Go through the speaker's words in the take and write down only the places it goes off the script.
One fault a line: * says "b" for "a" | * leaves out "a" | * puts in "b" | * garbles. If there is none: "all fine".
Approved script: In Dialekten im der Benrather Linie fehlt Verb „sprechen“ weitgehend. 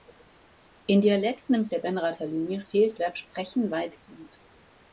all fine